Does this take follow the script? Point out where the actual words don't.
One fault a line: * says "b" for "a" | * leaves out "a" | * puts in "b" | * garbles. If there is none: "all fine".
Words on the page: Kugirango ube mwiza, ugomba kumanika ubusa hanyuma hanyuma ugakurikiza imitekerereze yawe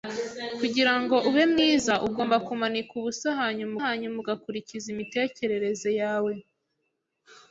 all fine